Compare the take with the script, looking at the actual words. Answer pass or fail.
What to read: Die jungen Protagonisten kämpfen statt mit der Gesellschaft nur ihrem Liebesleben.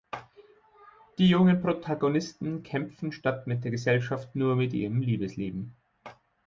fail